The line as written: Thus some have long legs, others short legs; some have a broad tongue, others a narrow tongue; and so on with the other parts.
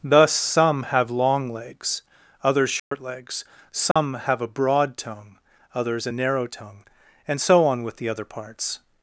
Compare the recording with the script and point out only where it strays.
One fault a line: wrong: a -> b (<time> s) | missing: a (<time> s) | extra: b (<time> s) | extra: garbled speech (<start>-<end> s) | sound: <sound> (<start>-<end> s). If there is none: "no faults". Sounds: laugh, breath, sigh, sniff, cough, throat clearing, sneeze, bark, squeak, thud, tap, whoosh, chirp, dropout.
sound: dropout (2.8-2.9 s)
sound: dropout (3.9-4.0 s)